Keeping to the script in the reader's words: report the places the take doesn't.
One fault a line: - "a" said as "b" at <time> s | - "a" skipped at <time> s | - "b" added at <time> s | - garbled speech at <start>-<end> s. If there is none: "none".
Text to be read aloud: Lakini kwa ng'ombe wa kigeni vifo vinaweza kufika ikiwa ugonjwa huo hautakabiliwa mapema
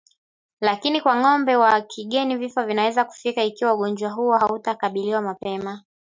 none